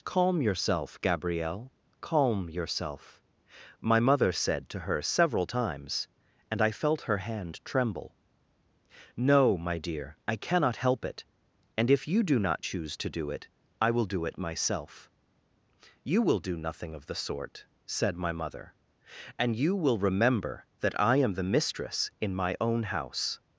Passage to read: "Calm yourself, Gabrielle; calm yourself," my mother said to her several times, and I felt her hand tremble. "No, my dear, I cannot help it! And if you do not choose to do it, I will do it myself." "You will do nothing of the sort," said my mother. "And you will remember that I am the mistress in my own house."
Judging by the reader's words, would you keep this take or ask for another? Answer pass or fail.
pass